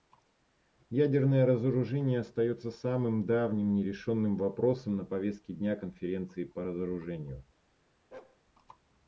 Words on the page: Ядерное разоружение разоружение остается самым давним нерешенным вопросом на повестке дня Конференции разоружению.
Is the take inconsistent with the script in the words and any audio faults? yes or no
yes